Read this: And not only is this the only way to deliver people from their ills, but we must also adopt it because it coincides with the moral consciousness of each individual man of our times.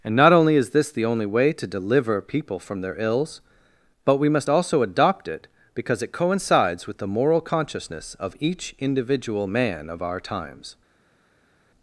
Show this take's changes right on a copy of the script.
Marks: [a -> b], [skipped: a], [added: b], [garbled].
And not only is this the only way to deliver people from their ills, but we must also adopt it because it coincides with the moral consciousness of each individual man of our times.